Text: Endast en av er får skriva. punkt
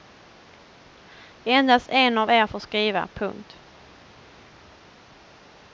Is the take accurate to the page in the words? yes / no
yes